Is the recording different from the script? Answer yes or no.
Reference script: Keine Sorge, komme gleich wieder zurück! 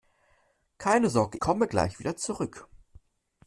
no